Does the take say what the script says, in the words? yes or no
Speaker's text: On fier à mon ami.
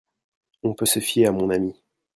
no